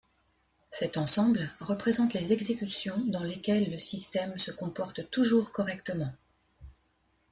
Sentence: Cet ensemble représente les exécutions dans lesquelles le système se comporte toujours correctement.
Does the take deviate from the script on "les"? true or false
false